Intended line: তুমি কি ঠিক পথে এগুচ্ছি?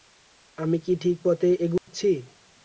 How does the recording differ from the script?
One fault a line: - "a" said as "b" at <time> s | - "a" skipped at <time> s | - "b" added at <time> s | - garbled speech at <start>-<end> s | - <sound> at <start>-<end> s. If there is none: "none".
- "তুমি" said as "আমি" at 0.6 s
- dropout at 1.8-1.9 s